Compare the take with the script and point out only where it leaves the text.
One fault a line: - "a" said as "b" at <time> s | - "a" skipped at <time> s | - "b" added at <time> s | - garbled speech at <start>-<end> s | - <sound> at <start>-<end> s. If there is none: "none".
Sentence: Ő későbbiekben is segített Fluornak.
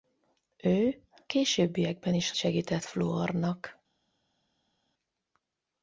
none